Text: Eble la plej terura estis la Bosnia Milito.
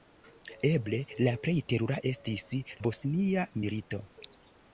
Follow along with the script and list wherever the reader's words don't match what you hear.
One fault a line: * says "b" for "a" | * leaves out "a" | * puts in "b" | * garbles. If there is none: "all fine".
* leaves out "la"